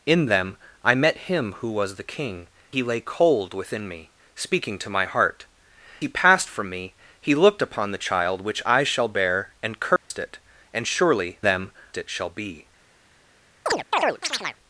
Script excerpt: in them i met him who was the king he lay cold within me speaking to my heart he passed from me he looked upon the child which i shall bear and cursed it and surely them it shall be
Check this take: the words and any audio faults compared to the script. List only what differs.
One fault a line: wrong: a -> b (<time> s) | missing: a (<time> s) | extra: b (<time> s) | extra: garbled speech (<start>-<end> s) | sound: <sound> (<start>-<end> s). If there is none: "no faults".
sound: dropout (10.0-10.1 s)
sound: chirp (13.7-14.6 s)